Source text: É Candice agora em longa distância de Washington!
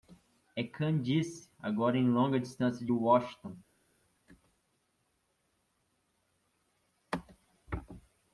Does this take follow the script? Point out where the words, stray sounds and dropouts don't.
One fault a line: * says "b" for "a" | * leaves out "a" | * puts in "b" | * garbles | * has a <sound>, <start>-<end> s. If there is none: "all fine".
all fine